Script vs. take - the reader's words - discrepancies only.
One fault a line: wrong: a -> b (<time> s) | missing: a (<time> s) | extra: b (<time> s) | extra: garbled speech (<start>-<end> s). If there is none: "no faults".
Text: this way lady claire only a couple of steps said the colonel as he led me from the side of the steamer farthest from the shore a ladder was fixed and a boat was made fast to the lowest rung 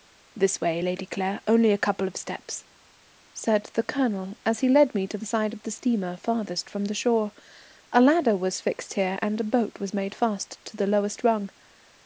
wrong: from -> to (5.1 s)
extra: here (8.9 s)